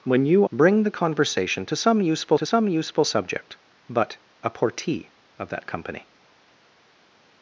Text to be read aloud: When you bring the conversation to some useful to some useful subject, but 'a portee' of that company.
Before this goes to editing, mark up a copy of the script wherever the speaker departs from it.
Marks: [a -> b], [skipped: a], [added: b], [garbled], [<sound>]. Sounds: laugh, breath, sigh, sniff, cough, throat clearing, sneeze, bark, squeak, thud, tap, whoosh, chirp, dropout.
When you bring the conversation to some useful to some useful subject, but 'a portee' of that company.